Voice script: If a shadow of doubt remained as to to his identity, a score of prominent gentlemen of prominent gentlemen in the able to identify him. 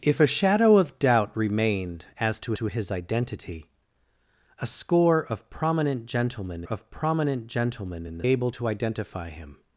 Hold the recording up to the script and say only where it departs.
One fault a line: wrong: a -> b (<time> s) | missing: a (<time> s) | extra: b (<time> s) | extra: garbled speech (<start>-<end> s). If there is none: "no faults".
no faults